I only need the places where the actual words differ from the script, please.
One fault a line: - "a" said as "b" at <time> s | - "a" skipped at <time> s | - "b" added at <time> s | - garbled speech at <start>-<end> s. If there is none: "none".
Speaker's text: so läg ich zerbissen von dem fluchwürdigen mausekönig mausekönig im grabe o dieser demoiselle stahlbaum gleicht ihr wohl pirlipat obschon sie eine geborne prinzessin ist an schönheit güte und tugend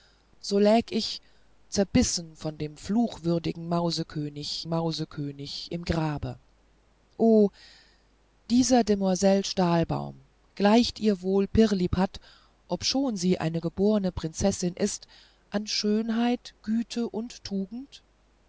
none